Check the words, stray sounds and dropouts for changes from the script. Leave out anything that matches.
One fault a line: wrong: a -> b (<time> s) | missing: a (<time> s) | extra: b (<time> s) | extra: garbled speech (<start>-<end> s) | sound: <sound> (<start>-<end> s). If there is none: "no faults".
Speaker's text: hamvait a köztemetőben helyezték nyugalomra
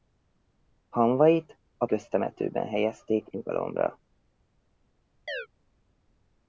sound: chirp (5.3-5.5 s)